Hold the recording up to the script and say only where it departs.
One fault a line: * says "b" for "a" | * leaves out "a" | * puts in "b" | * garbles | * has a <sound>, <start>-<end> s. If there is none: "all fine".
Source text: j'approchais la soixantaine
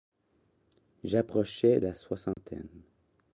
* has a dropout, 2.3-2.4 s